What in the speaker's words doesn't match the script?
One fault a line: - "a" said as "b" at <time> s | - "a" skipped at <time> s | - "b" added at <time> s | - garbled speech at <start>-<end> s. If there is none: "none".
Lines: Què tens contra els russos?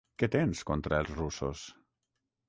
none